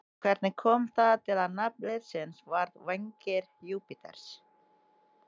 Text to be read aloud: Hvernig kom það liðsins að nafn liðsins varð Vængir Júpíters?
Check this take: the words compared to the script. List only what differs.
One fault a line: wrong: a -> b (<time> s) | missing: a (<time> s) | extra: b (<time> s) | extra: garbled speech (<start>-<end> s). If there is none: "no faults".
wrong: liðsins -> til (1.2 s)